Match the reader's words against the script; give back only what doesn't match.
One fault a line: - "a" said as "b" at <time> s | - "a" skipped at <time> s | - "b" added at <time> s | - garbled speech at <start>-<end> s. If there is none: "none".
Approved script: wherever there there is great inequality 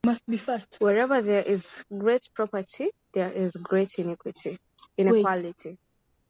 - "is great property" added at 1.4 s